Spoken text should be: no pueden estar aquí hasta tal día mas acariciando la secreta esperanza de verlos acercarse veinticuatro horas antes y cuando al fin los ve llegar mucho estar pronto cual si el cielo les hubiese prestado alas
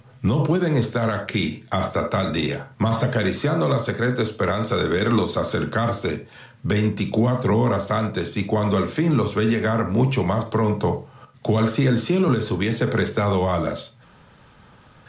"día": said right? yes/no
yes